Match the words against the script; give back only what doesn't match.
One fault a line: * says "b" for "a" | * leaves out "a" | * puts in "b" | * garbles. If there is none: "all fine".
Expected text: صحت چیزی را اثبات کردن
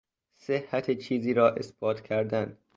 all fine